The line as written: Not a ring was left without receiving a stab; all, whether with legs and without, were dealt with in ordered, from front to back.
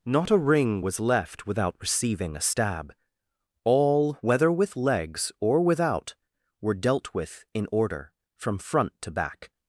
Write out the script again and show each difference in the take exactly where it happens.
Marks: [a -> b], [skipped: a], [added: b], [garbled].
Not a ring was left without receiving a stab; all, whether with legs [and -> or] without, were dealt with in [ordered, -> order] from front to back.